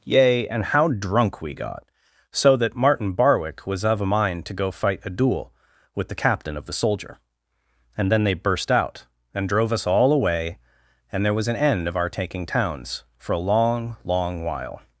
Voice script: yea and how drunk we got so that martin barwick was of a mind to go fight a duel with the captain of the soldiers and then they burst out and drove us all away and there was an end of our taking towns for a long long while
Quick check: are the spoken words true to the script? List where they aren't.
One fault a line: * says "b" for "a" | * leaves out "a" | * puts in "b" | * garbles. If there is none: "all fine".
* says "soldier" for "soldiers"